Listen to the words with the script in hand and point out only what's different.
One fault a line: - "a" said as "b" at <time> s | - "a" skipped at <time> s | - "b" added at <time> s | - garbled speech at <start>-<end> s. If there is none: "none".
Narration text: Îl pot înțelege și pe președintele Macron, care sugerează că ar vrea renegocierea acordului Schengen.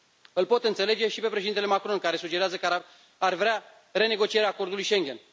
none